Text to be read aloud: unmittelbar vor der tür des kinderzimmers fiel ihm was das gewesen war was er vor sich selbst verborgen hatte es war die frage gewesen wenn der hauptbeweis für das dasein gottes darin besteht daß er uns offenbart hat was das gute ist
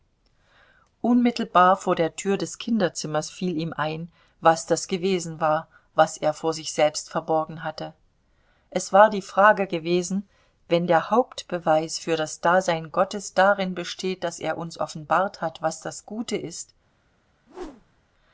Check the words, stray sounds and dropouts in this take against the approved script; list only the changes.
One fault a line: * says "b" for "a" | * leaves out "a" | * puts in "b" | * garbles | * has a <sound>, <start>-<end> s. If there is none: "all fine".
* puts in "ein"
* has a whoosh, 17.5-18.0 s